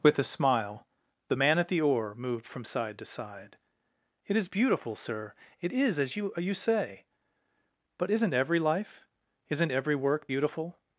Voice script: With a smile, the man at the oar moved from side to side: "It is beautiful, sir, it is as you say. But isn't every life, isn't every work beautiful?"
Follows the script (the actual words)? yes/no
no